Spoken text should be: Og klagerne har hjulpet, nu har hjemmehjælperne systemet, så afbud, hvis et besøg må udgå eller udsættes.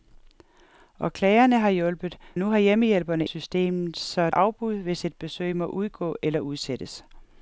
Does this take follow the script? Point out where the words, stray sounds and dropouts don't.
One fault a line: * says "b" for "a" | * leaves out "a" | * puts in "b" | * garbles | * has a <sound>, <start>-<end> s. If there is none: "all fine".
all fine